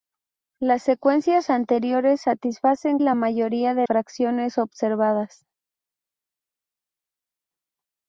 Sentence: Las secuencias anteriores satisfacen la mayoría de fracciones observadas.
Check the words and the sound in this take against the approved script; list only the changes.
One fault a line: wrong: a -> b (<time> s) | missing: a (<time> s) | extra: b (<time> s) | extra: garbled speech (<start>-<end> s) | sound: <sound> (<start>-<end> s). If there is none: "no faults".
no faults